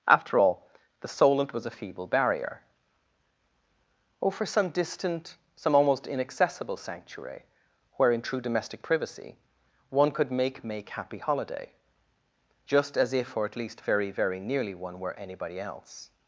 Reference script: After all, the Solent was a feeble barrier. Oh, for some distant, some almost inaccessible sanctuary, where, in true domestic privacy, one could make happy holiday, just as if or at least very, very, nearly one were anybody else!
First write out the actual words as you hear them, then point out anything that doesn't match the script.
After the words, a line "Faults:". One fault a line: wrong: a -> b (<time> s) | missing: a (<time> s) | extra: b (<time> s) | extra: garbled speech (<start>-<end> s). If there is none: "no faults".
After all, the Solent was a feeble barrier. Oh, for some distant, some almost inaccessible sanctuary, where, in true domestic privacy, one could make make happy holiday, just as if or at least very, very, nearly one were anybody else!
Faults:
extra: make (10.6 s)